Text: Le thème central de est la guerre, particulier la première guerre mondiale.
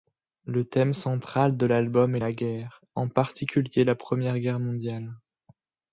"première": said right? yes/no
yes